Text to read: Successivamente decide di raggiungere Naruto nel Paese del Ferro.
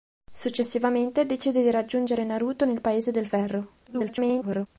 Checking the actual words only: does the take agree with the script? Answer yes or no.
no